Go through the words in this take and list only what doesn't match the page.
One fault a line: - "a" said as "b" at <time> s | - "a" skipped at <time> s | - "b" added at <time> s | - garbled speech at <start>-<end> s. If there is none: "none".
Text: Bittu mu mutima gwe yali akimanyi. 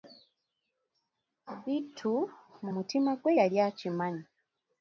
none